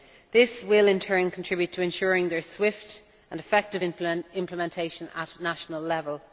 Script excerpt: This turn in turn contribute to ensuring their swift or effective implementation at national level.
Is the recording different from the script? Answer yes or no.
yes